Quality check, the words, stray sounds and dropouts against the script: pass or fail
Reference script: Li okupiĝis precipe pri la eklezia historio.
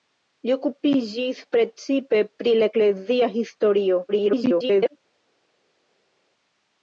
fail